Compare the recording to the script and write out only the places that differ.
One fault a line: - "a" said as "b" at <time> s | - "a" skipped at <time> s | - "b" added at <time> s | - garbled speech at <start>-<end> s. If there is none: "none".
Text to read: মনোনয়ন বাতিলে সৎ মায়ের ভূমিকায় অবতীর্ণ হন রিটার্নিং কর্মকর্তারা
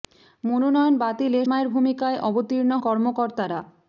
- "সৎ" skipped at 1.4 s
- "হন রিটার্নিং" skipped at 2.7 s